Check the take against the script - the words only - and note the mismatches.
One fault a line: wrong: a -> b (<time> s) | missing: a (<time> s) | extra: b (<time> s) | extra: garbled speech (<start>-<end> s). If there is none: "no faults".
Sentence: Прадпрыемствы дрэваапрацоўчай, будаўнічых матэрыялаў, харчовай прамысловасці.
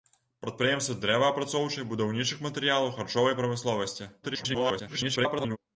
extra: garbled speech (4.2-5.6 s)